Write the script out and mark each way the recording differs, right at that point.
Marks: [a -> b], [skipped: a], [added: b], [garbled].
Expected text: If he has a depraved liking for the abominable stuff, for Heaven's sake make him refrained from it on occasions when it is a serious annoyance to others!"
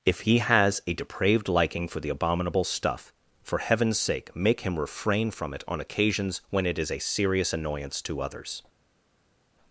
If he has a depraved liking for the abominable stuff, for Heaven's sake make him [refrained -> refrain] from it on occasions when it is a serious annoyance to others!"